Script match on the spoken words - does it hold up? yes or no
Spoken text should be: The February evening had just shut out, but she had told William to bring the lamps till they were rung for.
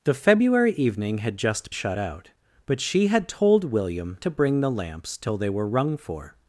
yes